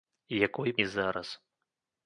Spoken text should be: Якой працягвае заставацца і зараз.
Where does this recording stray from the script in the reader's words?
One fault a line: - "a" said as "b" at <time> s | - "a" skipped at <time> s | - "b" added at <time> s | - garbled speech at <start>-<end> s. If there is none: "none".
- "працягвае заставацца" skipped at 0.7 s